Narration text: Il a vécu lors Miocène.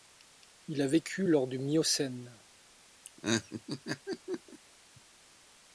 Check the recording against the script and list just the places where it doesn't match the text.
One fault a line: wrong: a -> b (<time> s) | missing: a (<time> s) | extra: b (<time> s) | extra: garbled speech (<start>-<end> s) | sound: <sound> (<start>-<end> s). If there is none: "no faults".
extra: du (1.5 s)
sound: laugh (3.0-4.6 s)